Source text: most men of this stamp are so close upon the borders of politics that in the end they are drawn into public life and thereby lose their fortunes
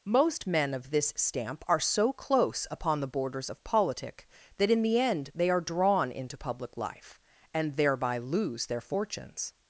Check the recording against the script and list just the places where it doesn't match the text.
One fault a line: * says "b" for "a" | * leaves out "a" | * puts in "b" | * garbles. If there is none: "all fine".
* says "politic" for "politics"